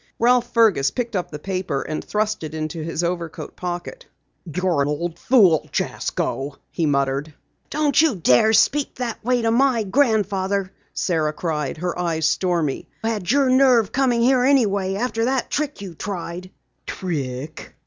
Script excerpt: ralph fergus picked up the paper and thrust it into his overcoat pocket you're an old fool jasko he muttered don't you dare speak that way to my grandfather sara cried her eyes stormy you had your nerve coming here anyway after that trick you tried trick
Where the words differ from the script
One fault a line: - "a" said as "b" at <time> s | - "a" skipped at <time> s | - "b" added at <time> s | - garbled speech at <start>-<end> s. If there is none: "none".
- "an" skipped at 4.8 s
- "you" skipped at 12.9 s